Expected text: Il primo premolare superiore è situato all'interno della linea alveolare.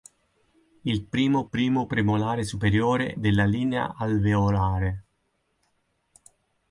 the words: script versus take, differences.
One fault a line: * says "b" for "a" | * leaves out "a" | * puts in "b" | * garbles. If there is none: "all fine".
* puts in "primo"
* leaves out "è situato all'interno"